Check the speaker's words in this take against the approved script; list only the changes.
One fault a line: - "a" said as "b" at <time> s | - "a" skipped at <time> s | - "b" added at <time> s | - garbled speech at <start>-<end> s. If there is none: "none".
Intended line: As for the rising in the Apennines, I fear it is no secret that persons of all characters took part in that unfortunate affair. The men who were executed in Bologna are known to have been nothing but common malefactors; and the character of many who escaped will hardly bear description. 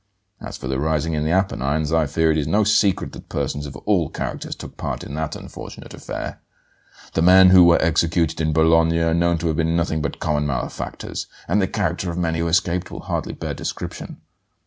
none